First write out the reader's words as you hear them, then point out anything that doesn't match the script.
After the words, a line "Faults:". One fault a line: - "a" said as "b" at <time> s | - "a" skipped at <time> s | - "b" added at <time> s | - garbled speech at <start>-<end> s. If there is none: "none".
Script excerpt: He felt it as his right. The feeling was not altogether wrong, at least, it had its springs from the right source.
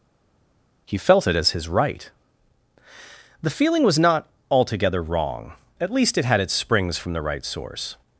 He felt it as his right. The feeling was not altogether wrong, at least, it had its springs from the right source.
Faults:
none